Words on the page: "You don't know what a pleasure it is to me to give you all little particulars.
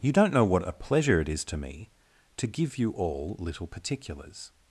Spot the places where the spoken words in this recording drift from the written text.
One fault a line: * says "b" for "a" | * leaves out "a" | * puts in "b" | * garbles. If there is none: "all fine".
all fine